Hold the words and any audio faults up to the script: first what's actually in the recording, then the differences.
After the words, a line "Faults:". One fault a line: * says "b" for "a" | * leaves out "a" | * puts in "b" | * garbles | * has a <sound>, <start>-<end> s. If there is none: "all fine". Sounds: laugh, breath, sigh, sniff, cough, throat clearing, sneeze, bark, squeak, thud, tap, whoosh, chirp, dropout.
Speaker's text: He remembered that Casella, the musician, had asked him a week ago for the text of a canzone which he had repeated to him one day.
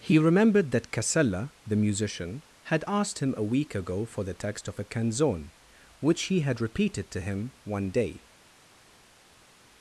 He remembered that Casella, the musician, had asked him a week ago for the text of a canzone which he had repeated to him one day.
Faults:
all fine